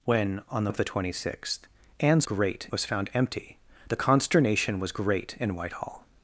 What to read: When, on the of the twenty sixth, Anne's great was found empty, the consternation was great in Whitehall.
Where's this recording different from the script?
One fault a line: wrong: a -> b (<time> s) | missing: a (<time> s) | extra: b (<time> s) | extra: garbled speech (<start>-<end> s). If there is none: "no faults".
no faults